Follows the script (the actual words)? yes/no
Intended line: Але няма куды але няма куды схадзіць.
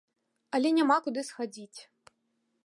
no